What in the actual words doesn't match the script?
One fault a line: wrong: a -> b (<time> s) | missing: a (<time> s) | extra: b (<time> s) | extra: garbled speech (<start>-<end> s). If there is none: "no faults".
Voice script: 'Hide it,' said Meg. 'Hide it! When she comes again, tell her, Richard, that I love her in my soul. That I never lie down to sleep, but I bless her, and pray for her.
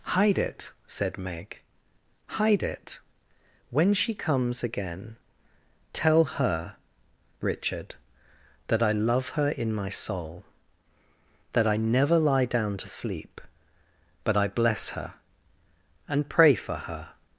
no faults